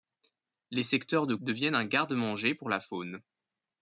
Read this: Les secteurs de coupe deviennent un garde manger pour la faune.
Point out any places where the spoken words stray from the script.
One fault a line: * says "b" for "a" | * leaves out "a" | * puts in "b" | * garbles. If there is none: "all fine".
* leaves out "coupe"